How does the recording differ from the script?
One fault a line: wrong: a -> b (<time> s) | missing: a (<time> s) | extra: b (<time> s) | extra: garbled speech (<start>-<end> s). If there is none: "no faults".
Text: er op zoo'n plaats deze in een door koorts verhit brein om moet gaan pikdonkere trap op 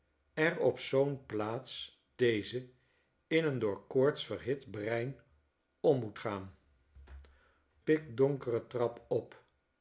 no faults